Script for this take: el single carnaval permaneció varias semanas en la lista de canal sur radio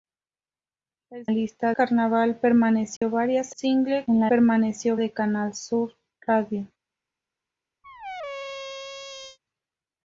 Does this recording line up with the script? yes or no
no